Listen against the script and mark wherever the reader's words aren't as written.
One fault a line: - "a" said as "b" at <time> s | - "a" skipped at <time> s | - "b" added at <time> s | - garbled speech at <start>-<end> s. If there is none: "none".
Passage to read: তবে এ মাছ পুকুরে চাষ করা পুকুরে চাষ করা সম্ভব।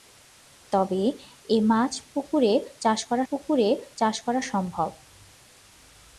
none